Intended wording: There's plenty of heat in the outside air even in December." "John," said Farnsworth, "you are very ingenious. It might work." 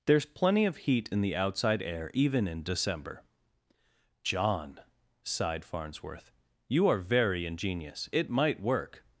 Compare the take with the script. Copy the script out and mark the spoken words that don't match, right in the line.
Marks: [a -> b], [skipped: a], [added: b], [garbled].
There's plenty of heat in the outside air even in December." "John," [said -> sighed] Farnsworth, "you are very ingenious. It might work."